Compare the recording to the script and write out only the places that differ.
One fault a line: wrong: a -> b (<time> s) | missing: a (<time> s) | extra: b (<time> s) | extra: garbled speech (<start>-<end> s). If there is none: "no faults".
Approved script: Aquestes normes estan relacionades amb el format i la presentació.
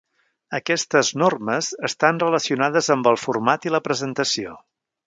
no faults